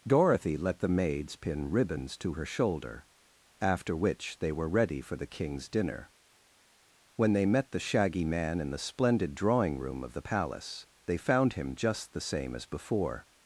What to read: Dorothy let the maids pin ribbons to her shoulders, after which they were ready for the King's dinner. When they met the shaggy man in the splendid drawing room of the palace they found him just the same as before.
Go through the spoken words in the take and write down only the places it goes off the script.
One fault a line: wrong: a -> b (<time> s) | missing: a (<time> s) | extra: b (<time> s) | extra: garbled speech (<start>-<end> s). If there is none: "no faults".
wrong: shoulders -> shoulder (2.5 s)